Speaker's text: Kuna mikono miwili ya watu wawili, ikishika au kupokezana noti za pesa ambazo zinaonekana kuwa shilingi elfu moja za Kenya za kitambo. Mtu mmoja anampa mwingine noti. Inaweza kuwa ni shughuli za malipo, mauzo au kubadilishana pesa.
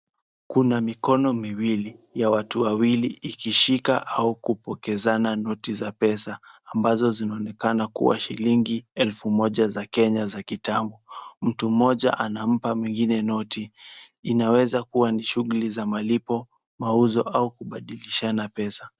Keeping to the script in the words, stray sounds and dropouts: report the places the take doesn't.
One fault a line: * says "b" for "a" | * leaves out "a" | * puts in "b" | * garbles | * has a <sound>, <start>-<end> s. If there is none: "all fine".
all fine